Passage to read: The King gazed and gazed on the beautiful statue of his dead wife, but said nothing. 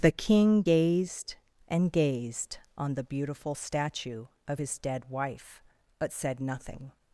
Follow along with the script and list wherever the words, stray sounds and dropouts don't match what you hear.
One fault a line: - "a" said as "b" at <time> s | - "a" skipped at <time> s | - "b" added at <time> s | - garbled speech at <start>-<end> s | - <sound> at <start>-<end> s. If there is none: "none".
none